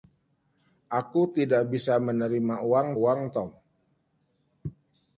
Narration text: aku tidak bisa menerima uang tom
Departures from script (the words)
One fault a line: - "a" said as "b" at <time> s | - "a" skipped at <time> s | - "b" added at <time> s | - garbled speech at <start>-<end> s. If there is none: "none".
- "uang" added at 3.0 s